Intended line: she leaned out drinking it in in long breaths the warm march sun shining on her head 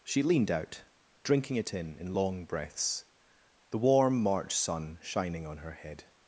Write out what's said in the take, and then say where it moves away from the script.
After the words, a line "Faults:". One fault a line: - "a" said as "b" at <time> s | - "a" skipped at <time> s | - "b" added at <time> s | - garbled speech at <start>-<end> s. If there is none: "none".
she leaned out drinking it in in long breaths the warm march sun shining on her head
Faults:
none